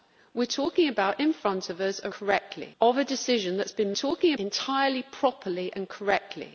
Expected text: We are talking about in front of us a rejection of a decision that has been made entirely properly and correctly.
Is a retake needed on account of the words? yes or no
yes